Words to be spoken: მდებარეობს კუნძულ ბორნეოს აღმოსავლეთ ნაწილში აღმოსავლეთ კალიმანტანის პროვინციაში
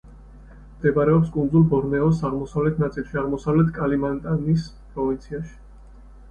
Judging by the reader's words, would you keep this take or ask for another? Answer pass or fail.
pass